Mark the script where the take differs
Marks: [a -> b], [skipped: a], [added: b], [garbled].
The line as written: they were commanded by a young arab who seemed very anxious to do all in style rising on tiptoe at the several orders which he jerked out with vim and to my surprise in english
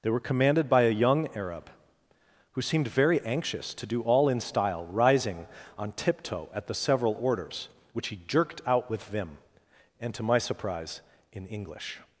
they were commanded by a young arab who seemed very anxious to do all in style rising on tiptoe at the several orders which he jerked out with vim and to my surprise in english